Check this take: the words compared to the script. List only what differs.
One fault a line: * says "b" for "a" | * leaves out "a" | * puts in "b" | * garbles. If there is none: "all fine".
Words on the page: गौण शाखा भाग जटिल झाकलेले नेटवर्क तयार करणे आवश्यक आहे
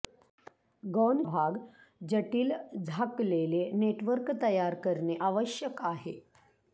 * leaves out "शाखा"